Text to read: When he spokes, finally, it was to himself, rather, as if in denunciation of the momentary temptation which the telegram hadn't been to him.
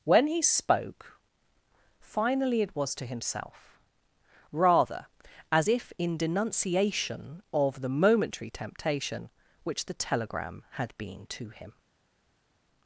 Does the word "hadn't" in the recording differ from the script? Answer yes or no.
yes